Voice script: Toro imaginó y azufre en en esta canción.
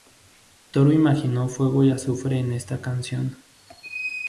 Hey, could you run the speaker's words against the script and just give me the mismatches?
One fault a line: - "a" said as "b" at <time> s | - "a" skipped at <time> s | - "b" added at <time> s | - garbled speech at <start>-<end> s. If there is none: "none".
- "fuego" added at 1.5 s
- "en" skipped at 2.5 s